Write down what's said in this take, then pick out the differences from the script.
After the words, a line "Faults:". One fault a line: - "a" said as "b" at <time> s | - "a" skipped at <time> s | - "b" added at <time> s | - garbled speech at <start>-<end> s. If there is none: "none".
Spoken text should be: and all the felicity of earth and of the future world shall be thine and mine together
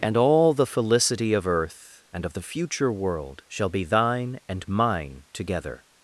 and all the felicity of earth and of the future world shall be thine and mine together
Faults:
none